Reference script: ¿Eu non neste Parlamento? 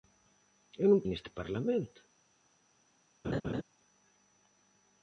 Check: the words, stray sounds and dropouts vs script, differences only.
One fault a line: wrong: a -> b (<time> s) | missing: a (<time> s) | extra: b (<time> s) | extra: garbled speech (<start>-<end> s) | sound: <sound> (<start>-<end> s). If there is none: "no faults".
sound: laugh (3.2-3.6 s)